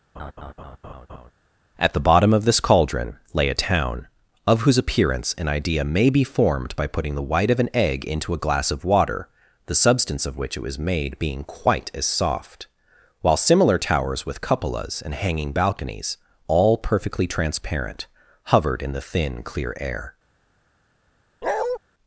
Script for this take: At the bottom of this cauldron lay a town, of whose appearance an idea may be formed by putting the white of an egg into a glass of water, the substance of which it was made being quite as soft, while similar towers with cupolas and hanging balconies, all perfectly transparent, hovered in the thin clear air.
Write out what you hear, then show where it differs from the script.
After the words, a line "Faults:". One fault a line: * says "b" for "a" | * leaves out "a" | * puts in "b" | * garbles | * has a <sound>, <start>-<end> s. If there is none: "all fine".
At the bottom of this cauldron lay a town, of whose appearance an idea may be formed by putting the white of an egg into a glass of water, the substance of which it was made being quite as soft, while similar towers with cupolas and hanging balconies, all perfectly transparent, hovered in the thin clear air.
Faults:
* has a laugh, 0.1-1.3 s
* has a bark, 21.4-21.8 s